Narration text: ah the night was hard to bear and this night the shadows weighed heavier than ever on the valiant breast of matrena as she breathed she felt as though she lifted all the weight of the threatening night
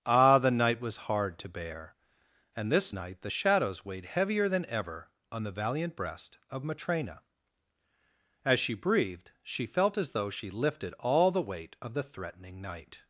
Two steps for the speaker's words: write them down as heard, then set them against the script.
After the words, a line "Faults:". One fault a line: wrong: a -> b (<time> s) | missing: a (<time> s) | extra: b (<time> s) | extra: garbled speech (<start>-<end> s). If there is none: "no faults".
ah the night was hard to bear and this night the shadows weighed heavier than ever on the valiant breast of matrena as she breathed she felt as though she lifted all the weight of the threatening night
Faults:
no faults